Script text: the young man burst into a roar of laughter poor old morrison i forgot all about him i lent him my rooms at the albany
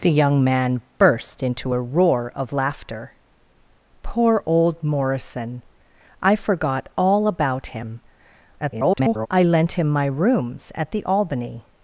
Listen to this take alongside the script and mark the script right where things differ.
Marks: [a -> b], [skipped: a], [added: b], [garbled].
the young man burst into a roar of laughter poor old morrison i forgot all about him [garbled] i lent him my rooms at the albany